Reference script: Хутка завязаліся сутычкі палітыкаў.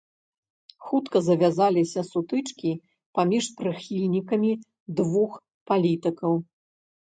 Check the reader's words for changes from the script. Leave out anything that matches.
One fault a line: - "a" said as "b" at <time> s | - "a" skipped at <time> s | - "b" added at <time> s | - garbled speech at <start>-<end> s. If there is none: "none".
- "паміж прыхільнікамі двух" added at 3.2 s